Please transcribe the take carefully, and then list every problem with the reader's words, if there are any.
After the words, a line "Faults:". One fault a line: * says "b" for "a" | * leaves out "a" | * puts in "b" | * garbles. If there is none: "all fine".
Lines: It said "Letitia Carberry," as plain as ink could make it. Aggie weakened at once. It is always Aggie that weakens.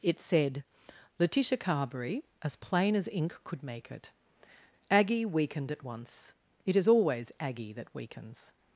It said "Letitia Carberry," as plain as ink could make it. Aggie weakened at once. It is always Aggie that weakens.
Faults:
all fine